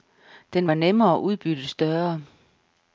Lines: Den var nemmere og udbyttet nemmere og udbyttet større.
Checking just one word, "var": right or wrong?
right